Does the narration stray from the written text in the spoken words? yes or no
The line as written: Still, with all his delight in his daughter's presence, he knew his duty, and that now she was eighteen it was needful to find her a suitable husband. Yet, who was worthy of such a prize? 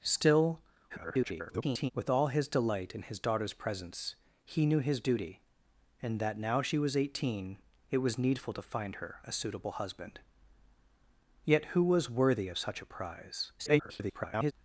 yes